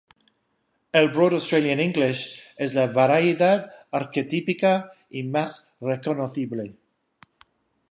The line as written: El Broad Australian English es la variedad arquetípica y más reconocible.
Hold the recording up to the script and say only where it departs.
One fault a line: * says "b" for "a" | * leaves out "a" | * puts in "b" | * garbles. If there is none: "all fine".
all fine